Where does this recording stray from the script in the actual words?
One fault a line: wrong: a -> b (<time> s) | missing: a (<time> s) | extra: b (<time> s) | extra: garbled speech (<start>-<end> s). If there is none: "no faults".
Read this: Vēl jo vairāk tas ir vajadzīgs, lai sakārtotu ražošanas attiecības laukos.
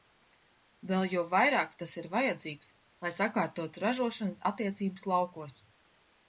no faults